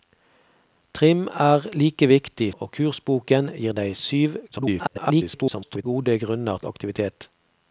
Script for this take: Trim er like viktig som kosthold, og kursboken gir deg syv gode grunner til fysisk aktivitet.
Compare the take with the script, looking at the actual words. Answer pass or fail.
fail